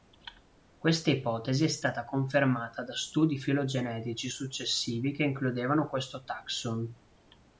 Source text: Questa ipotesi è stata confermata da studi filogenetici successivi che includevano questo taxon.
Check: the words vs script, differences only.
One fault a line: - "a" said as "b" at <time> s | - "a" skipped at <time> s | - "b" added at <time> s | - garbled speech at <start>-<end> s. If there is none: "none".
none